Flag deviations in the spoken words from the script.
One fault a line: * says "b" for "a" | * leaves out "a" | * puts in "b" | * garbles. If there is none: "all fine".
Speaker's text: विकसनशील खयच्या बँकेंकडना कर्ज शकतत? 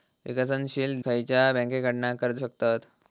all fine